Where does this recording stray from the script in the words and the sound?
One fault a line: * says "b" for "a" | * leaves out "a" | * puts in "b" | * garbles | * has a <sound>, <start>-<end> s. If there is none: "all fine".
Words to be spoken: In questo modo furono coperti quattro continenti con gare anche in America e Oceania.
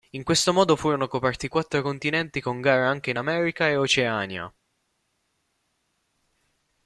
all fine